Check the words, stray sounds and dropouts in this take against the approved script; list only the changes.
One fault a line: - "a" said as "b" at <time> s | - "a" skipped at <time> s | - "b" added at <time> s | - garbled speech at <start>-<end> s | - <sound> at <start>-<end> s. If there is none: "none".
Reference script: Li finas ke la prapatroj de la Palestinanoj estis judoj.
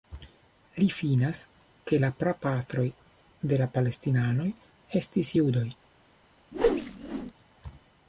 - whoosh at 6.5-7.3 s